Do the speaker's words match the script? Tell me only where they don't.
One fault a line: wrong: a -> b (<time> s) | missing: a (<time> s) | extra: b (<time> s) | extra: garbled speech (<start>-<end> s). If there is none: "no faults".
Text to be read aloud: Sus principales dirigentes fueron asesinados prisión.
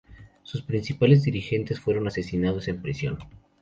extra: en (2.7 s)